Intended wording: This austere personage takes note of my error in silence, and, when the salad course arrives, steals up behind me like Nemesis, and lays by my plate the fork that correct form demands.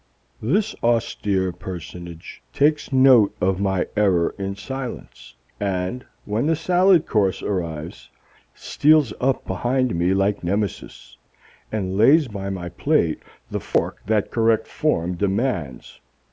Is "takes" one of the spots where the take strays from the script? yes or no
no